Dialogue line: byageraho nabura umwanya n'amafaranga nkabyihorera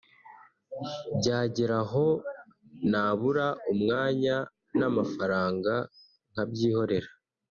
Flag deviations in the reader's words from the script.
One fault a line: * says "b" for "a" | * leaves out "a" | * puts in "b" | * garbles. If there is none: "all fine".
all fine